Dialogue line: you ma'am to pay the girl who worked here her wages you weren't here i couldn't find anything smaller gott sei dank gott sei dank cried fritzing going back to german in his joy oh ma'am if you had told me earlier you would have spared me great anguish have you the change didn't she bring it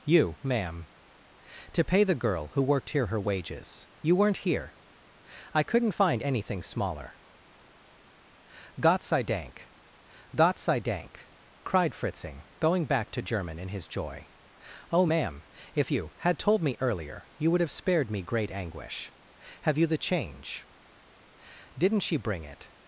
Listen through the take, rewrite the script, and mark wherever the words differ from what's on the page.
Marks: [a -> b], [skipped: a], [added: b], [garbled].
you ma'am to pay the girl who worked here her wages you weren't here i couldn't find anything smaller gott sei dank gott sei dank cried fritzing going back to german in his joy oh ma'am if you had told me earlier you would have spared me great anguish have you the change didn't she bring it